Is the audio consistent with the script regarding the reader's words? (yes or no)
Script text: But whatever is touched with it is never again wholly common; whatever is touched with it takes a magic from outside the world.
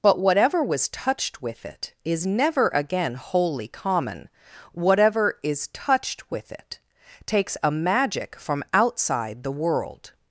no